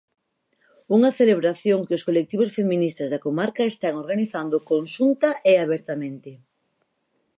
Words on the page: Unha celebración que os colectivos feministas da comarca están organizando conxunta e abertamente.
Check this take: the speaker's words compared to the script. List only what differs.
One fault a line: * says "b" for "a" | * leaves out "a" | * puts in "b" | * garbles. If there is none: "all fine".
all fine